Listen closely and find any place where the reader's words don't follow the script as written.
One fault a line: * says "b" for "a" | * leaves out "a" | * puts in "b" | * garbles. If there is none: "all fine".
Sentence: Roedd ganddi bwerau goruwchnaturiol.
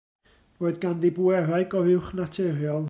all fine